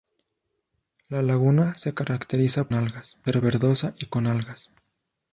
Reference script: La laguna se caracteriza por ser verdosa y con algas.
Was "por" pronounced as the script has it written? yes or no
no